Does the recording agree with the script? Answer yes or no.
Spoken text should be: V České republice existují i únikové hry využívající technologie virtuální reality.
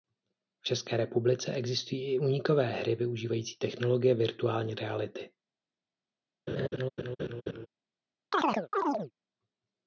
yes